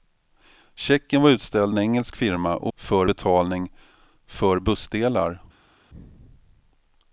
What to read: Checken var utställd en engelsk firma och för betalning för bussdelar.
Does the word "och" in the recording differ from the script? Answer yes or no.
no